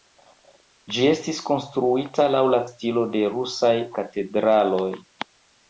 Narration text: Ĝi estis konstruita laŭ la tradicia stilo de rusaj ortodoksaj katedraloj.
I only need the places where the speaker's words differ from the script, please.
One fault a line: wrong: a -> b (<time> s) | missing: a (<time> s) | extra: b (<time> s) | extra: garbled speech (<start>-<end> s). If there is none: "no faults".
missing: tradicia (2.6 s)
missing: ortodoksaj (3.7 s)